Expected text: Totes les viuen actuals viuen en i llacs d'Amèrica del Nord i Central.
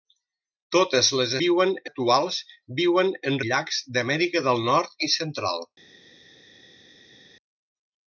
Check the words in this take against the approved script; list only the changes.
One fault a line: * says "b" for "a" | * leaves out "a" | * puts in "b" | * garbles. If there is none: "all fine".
all fine